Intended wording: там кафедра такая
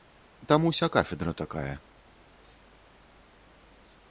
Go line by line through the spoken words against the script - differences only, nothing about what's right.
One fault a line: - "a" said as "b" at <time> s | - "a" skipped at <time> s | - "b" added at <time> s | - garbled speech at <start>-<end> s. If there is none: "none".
- "уся" added at 0.7 s